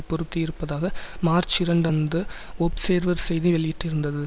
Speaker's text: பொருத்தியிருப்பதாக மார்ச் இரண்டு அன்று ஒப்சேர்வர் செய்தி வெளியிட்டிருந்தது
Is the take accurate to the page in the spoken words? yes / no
yes